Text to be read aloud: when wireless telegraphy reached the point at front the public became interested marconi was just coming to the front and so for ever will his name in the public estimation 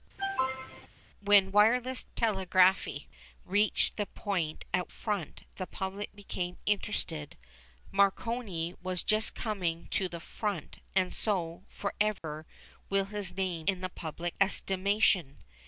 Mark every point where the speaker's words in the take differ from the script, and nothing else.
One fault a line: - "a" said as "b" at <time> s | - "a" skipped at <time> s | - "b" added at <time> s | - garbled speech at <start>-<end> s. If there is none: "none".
none